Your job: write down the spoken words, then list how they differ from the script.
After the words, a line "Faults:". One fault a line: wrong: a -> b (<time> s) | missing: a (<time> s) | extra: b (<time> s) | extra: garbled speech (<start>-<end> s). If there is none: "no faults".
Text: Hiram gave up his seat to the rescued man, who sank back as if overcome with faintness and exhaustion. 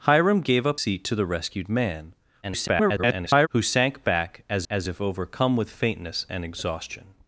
Hiram gave up seat to the rescued man, [garbled] who sank back as as if overcome with faintness and exhaustion.
Faults:
missing: his (0.8 s)
extra: garbled speech (2.4-3.5 s)
extra: as (4.7 s)